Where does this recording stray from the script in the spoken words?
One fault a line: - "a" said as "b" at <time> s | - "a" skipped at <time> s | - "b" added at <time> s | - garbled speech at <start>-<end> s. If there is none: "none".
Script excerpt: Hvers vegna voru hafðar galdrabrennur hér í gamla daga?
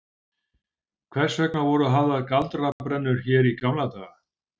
none